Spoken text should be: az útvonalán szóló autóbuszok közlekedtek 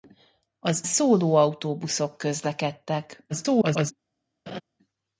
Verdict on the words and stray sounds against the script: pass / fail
fail